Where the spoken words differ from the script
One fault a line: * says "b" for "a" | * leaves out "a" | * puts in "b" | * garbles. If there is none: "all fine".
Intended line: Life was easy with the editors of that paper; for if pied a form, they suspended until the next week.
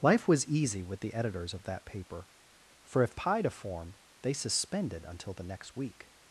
all fine